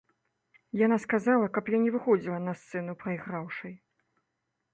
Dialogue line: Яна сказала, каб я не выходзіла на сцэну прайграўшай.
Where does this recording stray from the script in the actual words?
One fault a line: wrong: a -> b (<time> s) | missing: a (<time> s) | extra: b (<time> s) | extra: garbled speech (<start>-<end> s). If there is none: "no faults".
no faults